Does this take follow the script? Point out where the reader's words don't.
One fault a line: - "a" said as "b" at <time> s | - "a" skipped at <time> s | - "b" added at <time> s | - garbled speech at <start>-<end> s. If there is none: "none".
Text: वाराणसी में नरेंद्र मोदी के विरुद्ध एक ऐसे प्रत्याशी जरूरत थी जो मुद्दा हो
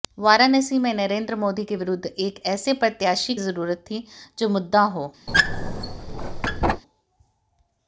none